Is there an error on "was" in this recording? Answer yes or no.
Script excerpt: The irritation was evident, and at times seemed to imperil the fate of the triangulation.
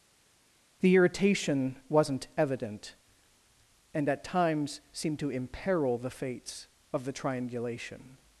yes